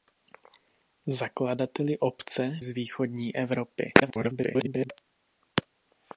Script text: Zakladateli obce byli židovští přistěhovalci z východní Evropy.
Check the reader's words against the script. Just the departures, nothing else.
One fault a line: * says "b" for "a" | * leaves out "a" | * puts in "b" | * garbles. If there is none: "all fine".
* leaves out "byli židovští přistěhovalci"
* garbles